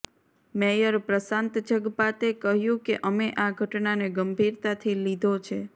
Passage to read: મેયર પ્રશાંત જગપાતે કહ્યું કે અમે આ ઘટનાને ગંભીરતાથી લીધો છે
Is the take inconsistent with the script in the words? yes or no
no